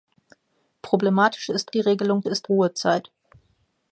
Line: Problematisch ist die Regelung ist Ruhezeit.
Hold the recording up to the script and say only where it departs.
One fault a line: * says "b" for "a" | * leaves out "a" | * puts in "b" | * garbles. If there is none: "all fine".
all fine